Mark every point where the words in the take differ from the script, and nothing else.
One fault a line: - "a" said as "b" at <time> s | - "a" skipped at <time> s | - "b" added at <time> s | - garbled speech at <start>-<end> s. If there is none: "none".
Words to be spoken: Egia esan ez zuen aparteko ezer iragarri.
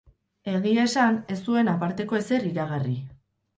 none